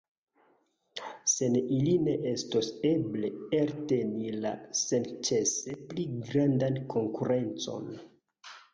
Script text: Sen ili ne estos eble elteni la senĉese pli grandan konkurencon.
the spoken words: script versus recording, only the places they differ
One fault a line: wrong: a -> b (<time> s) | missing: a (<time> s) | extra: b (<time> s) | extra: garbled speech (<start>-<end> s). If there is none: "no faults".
no faults